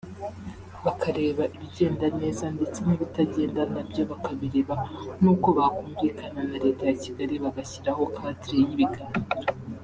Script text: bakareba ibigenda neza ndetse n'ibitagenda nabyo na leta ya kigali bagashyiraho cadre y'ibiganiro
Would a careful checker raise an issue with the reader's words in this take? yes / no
yes